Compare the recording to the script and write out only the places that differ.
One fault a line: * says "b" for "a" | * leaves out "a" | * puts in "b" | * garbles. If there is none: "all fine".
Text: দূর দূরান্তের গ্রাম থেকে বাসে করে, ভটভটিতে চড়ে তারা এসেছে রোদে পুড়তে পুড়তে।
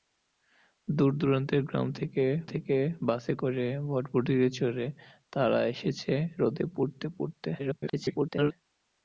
* puts in "থেকে"
* garbles